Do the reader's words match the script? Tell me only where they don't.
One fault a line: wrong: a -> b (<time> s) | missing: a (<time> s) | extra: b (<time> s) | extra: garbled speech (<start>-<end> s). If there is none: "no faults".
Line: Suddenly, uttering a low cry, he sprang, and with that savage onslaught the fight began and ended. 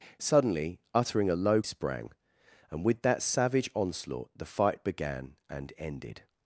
missing: cry he (1.6 s)